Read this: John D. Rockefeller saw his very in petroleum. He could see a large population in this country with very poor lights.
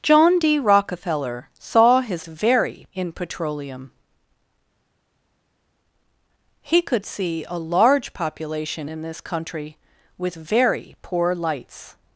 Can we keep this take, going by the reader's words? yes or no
yes